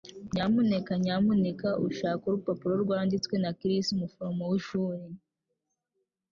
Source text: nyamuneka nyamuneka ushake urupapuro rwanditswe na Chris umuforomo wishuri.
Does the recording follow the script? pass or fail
pass